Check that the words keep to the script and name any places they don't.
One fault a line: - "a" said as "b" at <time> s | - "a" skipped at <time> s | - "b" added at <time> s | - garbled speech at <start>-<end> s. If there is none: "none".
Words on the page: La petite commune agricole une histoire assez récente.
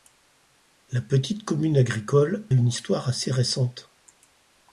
none